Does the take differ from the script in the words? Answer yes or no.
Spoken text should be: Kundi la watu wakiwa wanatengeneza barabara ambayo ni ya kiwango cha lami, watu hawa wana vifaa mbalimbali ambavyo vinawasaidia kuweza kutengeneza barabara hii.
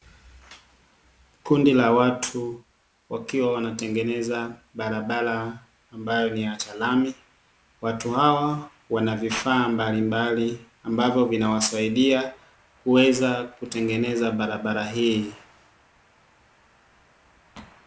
yes